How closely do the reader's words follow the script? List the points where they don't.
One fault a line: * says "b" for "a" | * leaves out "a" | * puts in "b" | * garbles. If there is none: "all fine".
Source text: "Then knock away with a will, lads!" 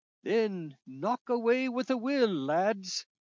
all fine